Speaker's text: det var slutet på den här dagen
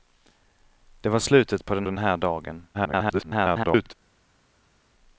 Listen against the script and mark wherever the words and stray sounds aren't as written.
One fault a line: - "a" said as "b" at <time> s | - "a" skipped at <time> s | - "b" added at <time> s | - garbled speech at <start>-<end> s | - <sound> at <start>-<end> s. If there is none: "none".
- "den" added at 1.9 s
- garbled speech at 2.7-3.9 s